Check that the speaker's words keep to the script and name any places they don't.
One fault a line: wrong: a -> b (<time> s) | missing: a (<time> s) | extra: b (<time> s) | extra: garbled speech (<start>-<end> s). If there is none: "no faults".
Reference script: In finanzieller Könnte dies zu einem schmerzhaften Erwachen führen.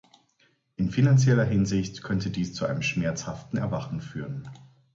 extra: Hinsicht (1.4 s)